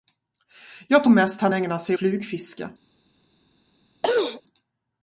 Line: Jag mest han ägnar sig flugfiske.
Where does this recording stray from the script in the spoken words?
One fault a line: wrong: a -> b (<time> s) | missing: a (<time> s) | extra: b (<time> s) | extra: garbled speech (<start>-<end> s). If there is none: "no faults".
no faults